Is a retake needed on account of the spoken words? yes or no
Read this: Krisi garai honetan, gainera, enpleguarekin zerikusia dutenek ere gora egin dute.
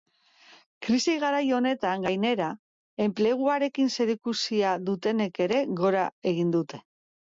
no